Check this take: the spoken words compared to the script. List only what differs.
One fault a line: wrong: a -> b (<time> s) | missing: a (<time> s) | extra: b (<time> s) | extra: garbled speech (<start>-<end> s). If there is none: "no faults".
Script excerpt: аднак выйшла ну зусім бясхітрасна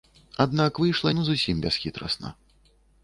no faults